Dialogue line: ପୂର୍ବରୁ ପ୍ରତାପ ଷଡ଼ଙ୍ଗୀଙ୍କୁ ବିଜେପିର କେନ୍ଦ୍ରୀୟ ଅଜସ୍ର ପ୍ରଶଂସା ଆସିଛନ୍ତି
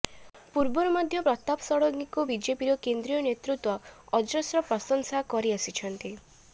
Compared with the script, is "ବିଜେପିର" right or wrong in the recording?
right